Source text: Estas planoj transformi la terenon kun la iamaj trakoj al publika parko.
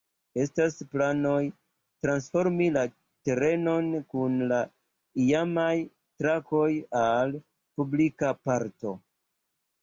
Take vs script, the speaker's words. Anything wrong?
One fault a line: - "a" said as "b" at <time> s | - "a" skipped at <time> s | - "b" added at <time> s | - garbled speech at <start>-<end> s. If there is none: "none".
none